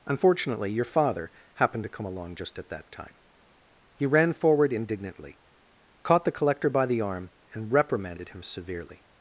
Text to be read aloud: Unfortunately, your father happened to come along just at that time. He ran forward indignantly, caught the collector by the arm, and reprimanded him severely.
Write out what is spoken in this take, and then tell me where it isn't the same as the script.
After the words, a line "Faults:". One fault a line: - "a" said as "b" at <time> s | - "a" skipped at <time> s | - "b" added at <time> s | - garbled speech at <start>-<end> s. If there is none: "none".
Unfortunately, your father happened to come along just at that time. He ran forward indignantly, caught the collector by the arm, and reprimanded him severely.
Faults:
none